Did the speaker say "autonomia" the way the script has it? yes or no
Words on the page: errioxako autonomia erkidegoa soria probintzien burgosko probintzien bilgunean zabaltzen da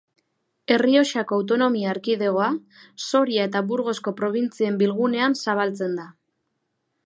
yes